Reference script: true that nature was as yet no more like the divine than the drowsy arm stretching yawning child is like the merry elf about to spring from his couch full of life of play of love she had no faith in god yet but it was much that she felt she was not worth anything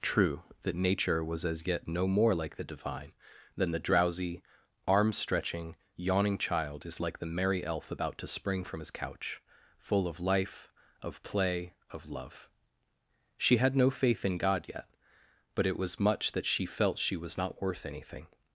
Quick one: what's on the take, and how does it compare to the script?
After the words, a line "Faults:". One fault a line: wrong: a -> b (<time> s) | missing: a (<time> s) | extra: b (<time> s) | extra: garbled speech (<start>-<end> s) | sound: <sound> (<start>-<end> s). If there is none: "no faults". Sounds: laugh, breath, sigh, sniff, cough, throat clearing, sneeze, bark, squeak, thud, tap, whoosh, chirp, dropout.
true that nature was as yet no more like the divine than the drowsy arm stretching yawning child is like the merry elf about to spring from his couch full of life of play of love she had no faith in god yet but it was much that she felt she was not worth anything
Faults:
no faults